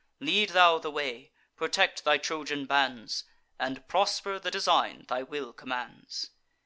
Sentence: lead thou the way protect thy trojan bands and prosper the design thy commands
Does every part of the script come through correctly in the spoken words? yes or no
no